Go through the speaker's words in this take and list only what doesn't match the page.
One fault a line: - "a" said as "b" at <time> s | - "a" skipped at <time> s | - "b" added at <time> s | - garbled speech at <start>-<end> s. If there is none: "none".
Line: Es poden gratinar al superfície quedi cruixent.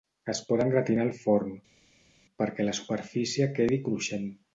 - "forn perquè la" added at 1.2 s